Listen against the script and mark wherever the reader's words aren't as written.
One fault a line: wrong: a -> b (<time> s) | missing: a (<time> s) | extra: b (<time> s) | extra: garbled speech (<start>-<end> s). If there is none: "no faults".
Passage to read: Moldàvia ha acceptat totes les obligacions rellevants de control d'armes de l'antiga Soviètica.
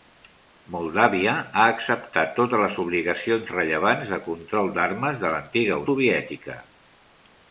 no faults